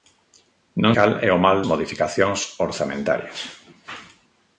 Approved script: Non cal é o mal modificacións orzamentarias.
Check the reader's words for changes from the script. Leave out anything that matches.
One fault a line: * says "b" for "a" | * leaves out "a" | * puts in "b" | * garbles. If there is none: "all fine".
all fine